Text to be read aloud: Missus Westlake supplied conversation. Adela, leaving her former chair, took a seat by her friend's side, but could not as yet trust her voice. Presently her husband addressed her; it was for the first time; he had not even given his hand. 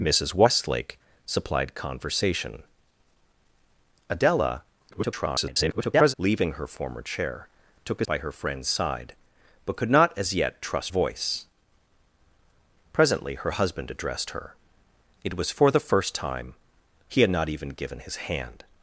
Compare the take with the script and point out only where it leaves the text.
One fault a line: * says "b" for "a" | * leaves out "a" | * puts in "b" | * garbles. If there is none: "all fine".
* garbles
* leaves out "seat"
* leaves out "her"